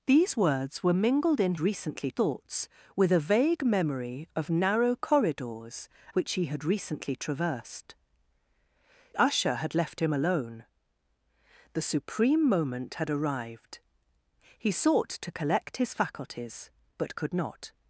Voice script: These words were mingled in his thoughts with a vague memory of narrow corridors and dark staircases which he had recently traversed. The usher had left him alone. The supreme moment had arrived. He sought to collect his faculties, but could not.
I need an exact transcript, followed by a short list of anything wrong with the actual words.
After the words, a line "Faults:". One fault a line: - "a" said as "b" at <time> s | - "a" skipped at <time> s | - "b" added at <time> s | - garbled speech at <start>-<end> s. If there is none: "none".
These words were mingled in recently thoughts with a vague memory of narrow corridors which he had recently traversed. Usher had left him alone. The supreme moment had arrived. He sought to collect his faculties, but could not.
Faults:
- "his" said as "recently" at 1.6 s
- "and dark staircases" skipped at 5.9 s
- "The" skipped at 7.9 s